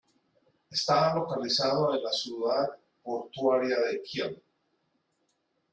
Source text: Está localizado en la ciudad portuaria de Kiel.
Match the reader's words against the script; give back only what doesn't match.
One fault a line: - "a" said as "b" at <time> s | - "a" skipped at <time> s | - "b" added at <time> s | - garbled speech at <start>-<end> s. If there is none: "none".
none